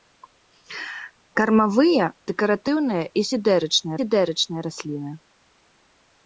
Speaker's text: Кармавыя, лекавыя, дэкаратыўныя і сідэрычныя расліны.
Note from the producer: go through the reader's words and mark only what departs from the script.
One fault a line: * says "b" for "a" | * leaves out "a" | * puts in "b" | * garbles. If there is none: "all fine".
* leaves out "лекавыя"
* puts in "сідэрычныя"